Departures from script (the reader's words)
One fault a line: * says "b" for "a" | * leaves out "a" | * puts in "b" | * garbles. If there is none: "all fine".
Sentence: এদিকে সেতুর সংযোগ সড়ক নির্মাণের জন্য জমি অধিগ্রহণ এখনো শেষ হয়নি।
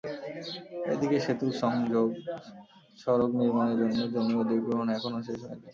all fine